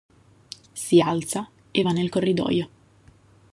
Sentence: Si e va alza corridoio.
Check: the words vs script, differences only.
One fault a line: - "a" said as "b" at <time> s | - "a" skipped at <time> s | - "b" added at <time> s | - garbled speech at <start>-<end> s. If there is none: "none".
- "alza" added at 1.0 s
- "alza" said as "nel" at 1.9 s